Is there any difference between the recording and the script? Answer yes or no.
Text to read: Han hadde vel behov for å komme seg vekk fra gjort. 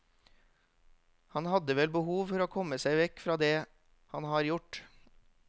yes